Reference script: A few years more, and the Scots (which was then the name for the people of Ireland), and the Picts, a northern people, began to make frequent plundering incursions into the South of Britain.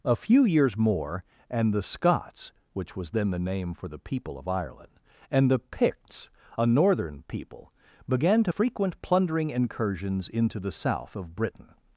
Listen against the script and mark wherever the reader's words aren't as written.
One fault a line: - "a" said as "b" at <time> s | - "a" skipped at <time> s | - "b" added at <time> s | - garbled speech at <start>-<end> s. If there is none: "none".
- "make" skipped at 8.5 s